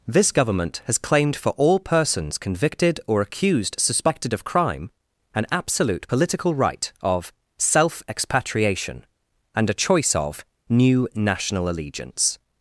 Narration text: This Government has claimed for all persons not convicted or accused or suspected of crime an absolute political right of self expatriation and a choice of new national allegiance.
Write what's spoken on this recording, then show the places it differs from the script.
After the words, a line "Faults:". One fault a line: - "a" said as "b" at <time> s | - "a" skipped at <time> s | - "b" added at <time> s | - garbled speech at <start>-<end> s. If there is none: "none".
This Government has claimed for all persons convicted or accused suspected of crime an absolute political right of self expatriation and a choice of new national allegiance.
Faults:
- "not" skipped at 2.4 s
- "or" skipped at 3.8 s